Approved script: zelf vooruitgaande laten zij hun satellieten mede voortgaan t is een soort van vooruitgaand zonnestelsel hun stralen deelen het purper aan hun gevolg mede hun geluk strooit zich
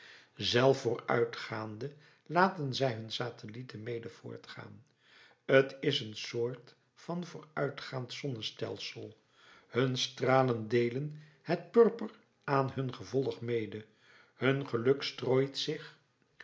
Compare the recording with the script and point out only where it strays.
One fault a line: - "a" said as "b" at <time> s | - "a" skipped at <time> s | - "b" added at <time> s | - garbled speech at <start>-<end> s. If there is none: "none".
none